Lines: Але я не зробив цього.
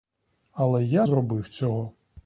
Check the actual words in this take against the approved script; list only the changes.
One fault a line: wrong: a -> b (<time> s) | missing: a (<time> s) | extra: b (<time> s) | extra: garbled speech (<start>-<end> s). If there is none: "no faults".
missing: не (1.1 s)